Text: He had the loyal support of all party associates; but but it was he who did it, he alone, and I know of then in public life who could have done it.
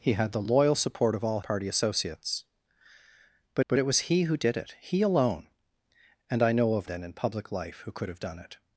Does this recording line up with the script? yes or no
yes